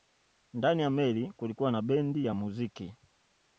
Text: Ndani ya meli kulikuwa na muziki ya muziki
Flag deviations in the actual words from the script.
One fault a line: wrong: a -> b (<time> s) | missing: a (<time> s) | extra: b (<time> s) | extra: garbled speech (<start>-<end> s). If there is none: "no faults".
wrong: muziki -> bendi (1.8 s)